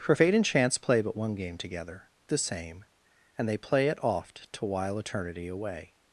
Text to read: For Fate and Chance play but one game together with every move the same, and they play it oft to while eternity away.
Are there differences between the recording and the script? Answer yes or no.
yes